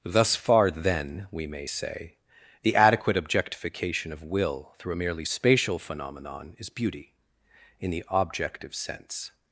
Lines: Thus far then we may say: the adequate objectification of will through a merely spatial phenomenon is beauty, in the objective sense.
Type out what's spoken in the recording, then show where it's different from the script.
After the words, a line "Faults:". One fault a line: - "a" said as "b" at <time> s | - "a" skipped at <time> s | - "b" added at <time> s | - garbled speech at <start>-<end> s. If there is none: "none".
Thus far then we may say: the adequate objectification of will through a merely spatial phenomenon is beauty, in the objective sense.
Faults:
none